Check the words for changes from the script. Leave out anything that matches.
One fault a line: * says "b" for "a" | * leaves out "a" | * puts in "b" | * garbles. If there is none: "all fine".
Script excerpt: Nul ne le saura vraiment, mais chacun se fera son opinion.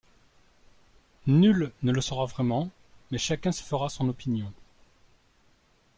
all fine